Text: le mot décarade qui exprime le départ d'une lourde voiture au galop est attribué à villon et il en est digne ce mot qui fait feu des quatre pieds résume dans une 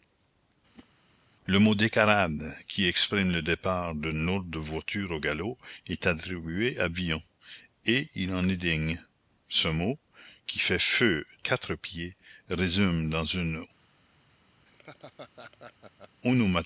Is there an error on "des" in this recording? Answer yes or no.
yes